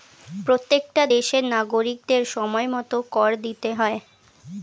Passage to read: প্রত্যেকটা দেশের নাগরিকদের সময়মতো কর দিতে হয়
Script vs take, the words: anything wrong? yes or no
no